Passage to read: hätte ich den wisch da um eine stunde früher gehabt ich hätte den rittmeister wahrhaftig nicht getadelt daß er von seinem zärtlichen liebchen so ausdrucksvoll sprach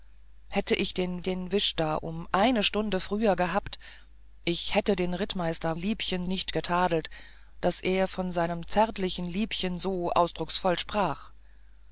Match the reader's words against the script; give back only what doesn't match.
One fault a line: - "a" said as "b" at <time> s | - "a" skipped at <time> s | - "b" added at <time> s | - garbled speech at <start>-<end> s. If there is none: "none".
- "den" added at 1.2 s
- "wahrhaftig" said as "liebchen" at 5.7 s